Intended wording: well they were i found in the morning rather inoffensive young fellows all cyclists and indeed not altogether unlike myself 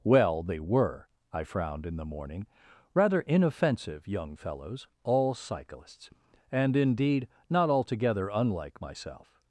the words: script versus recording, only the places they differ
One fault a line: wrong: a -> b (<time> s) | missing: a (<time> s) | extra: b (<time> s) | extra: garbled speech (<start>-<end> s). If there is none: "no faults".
wrong: found -> frowned (1.4 s)